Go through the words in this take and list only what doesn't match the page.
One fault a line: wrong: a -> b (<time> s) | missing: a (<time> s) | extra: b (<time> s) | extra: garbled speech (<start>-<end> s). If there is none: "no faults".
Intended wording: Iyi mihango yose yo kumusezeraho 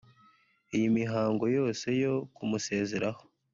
no faults